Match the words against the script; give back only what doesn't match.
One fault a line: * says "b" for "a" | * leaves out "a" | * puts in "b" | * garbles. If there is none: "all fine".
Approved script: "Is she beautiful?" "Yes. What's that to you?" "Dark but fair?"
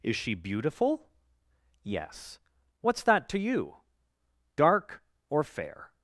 * says "or" for "but"